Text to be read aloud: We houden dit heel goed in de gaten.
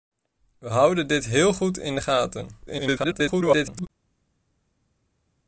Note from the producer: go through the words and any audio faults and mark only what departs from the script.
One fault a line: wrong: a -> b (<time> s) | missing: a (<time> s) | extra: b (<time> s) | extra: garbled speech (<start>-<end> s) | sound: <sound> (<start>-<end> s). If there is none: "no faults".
extra: garbled speech (2.7-3.9 s)